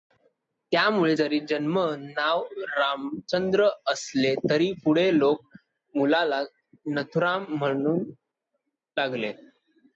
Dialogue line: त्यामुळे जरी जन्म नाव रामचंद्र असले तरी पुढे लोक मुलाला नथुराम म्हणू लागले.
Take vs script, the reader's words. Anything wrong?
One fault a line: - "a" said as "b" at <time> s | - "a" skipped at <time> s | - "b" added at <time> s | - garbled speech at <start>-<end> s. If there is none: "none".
none